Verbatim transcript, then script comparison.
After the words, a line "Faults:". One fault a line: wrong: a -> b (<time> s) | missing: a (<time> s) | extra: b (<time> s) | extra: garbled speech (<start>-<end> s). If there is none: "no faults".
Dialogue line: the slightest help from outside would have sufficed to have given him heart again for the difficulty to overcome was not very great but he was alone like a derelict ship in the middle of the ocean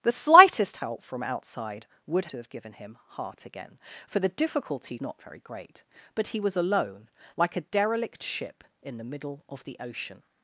the slightest help from outside would to have given him heart again for the difficulty not very great but he was alone like a derelict ship in the middle of the ocean
Faults:
missing: have sufficed (2.3 s)
missing: to overcome was (5.0 s)